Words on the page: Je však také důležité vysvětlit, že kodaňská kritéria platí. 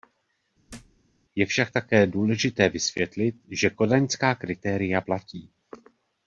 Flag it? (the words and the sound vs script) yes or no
yes